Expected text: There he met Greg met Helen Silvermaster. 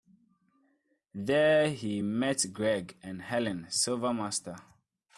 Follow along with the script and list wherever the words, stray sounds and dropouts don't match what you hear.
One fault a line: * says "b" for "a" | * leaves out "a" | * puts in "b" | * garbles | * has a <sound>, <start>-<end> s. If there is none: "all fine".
* says "and" for "met"